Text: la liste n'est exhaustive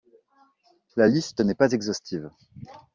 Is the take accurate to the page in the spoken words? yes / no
no